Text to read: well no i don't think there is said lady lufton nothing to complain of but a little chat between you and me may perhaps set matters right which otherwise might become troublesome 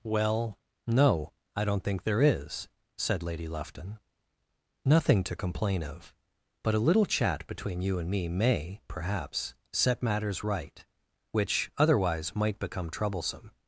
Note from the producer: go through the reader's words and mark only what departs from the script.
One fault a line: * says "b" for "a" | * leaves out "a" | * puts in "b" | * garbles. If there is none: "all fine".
all fine